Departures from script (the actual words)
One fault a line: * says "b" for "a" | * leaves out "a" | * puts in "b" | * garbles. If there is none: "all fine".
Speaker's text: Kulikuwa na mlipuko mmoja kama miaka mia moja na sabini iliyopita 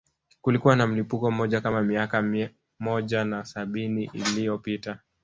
all fine